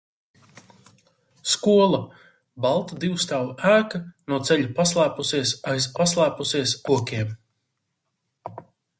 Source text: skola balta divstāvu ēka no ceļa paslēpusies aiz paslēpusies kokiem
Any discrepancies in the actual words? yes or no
no